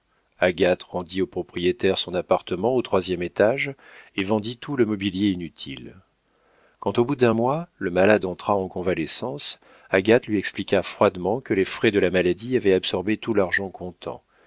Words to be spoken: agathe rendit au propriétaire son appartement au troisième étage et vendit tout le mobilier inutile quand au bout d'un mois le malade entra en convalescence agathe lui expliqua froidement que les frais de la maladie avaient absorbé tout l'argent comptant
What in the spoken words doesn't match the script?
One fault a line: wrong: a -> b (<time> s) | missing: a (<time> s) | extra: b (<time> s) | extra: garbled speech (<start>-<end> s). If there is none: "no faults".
no faults